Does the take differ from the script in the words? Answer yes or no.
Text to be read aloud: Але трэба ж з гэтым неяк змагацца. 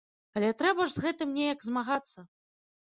no